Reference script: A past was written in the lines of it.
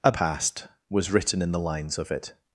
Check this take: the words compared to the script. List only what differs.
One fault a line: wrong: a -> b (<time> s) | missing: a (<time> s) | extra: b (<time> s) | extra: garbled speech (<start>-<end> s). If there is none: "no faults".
no faults